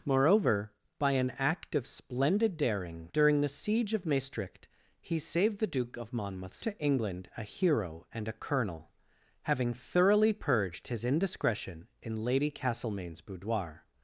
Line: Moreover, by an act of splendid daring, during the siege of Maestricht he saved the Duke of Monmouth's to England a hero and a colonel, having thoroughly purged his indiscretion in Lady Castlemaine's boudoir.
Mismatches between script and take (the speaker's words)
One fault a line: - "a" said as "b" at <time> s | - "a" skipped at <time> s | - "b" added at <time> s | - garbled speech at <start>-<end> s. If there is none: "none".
none